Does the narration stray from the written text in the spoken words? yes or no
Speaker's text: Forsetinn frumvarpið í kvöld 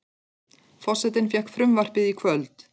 yes